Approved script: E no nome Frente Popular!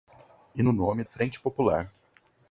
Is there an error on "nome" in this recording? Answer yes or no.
no